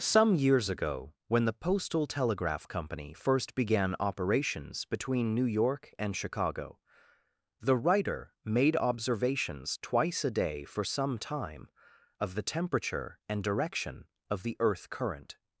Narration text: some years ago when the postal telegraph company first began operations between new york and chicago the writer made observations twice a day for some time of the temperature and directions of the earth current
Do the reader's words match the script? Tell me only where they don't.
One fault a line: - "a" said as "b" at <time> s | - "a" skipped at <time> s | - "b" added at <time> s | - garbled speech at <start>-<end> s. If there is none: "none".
- "directions" said as "direction" at 13.4 s